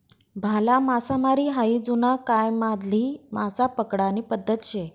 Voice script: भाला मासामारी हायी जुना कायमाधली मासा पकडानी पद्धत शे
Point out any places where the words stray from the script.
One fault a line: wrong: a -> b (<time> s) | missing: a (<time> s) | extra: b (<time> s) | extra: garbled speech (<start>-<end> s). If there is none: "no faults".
no faults